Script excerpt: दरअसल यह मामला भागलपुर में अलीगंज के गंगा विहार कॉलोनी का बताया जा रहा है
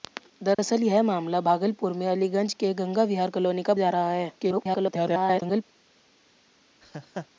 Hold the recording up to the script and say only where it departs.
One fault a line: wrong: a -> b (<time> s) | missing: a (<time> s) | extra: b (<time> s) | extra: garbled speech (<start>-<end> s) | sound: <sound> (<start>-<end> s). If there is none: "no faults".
sound: dropout (0.5-0.6 s)
missing: बताया (3.7 s)
extra: garbled speech (4.4-5.6 s)
sound: laugh (6.8-7.3 s)